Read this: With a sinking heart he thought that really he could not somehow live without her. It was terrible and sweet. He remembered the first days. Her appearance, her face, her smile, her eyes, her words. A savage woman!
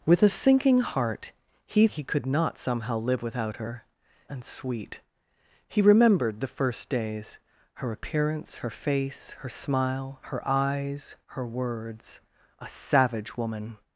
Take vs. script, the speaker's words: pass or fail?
fail